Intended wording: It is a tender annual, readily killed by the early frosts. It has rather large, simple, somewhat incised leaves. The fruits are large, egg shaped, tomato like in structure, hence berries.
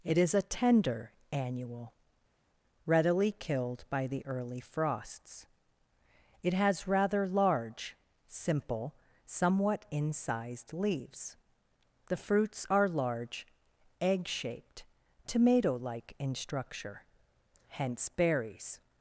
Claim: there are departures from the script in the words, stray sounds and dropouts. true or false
false